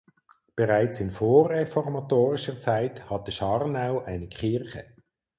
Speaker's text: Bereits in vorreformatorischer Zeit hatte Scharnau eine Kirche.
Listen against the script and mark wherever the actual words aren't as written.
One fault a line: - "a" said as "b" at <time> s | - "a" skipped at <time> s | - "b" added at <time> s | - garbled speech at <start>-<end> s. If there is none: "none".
none